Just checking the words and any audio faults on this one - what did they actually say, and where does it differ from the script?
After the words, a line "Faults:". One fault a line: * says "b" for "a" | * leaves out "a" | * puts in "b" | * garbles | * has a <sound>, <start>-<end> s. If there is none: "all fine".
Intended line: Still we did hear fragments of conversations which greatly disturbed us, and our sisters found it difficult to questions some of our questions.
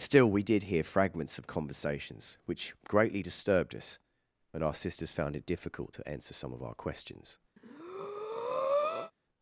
Still we did hear fragments of conversations which greatly disturbed us, and our sisters found it difficult to answer some of our questions.
Faults:
* says "answer" for "questions"
* has a breath, 7.6-9.1 s